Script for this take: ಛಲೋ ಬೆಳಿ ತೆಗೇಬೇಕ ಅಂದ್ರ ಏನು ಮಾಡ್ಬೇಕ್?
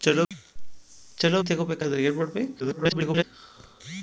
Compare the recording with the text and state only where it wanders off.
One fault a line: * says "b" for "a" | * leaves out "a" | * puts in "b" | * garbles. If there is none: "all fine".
* leaves out "ಬೆಳಿ"
* garbles